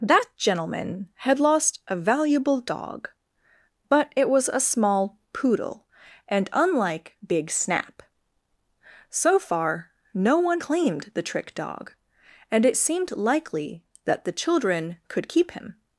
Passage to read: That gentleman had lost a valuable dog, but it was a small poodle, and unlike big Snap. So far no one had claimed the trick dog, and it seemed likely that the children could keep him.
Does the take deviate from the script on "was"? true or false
false